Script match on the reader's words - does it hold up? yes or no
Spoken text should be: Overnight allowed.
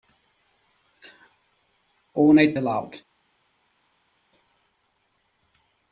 yes